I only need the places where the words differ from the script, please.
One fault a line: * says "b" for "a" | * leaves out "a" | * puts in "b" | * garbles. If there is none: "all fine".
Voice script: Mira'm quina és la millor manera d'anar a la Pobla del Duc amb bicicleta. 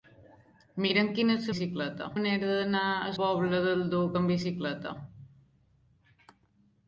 * says "bicicleta" for "millor"
* leaves out "la"